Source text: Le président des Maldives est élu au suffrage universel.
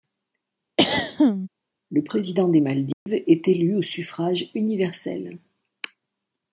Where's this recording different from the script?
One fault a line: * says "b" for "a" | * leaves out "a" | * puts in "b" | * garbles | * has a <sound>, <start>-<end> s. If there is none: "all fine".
* has a throat clearing, 0.8-1.5 s
* has a dropout, 2.9-3.1 s